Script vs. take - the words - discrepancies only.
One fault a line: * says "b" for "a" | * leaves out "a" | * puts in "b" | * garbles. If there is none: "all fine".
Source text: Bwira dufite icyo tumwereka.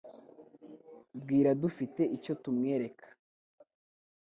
all fine